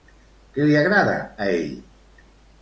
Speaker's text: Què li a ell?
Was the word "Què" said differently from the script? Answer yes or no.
no